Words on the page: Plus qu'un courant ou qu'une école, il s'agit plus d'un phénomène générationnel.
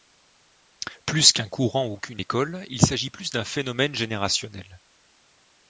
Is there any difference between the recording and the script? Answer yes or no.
no